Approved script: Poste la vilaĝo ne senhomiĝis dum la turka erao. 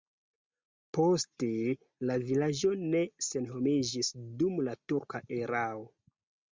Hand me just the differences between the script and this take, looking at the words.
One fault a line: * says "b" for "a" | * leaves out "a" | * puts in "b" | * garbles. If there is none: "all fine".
all fine